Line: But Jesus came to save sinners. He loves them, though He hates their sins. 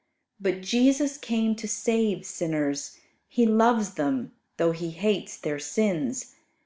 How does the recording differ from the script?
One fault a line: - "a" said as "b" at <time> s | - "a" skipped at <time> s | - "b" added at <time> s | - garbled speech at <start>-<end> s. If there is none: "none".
none